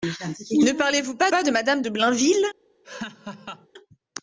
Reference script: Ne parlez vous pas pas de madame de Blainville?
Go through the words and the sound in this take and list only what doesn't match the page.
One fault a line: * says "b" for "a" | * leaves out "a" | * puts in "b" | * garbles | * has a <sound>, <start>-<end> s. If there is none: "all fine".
* has a laugh, 2.8-3.7 s